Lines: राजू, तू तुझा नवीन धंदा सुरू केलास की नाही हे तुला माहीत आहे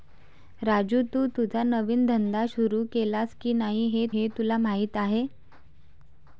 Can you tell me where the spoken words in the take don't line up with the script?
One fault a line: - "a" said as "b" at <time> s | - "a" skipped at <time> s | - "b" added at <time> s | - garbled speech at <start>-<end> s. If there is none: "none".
- "हे" added at 4.1 s